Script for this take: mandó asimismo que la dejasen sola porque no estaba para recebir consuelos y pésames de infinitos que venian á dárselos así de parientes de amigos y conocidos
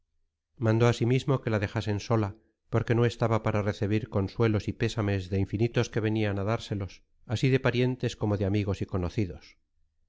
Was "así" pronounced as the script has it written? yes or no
yes